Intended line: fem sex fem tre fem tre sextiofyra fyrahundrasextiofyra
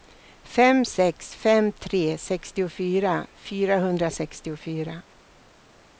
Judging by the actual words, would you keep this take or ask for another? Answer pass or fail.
fail